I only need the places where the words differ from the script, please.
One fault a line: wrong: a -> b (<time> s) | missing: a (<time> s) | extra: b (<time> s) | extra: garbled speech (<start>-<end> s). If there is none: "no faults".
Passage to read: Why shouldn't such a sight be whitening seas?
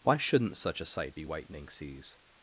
no faults